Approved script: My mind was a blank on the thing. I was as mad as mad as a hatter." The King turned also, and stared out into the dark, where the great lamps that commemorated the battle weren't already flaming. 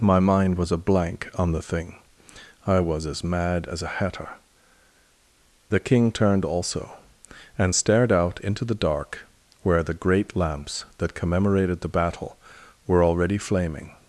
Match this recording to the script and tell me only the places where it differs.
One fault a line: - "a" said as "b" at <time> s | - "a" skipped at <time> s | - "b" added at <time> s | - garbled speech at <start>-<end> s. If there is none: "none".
- "mad as" skipped at 3.8 s
- "weren't" said as "were" at 12.9 s